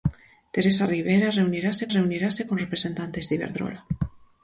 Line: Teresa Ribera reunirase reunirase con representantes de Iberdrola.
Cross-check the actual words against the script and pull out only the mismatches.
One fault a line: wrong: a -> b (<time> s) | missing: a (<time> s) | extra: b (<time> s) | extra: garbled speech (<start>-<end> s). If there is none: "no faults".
no faults